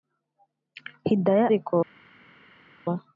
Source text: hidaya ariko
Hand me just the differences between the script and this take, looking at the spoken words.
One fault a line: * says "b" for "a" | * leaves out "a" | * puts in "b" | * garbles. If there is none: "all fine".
all fine